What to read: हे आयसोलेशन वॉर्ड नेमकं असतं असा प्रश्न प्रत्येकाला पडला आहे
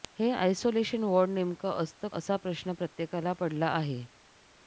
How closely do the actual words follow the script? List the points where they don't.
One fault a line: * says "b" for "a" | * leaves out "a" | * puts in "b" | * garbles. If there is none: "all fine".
all fine